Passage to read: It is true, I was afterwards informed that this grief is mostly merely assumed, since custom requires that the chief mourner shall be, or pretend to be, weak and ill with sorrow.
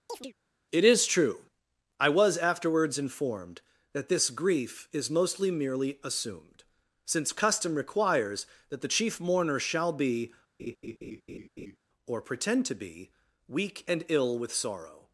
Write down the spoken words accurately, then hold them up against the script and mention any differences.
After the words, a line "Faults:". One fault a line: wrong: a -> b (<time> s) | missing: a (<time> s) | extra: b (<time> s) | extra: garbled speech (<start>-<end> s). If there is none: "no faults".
It is true, I was afterwards informed that this grief is mostly merely assumed, since custom requires that the chief mourner shall be, or pretend to be, weak and ill with sorrow.
Faults:
no faults